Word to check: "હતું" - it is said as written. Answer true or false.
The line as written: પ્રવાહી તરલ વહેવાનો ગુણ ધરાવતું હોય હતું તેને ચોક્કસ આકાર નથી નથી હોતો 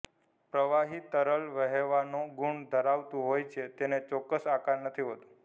false